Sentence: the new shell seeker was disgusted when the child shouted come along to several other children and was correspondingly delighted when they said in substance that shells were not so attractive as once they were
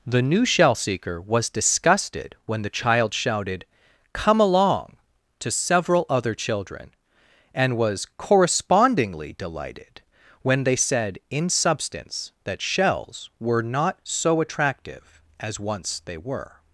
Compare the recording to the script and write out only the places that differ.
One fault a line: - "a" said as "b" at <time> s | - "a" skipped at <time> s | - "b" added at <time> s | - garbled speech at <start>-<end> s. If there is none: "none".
none